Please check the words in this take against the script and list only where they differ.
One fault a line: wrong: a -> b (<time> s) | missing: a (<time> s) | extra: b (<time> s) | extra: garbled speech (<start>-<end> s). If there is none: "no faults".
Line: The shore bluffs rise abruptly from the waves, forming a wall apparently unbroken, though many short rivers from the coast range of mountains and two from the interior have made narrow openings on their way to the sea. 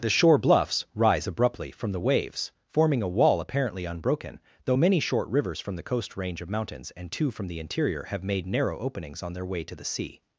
no faults